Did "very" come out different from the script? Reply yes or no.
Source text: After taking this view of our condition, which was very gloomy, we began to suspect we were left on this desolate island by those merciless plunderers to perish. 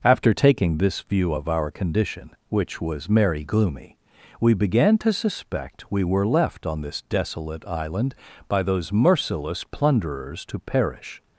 yes